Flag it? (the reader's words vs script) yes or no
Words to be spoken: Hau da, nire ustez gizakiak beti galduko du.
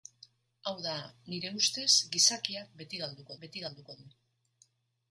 yes